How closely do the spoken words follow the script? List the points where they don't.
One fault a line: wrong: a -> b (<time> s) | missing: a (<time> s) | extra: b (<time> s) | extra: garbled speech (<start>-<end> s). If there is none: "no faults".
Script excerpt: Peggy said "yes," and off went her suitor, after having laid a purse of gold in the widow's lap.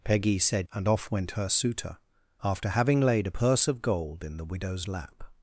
missing: yes (0.7 s)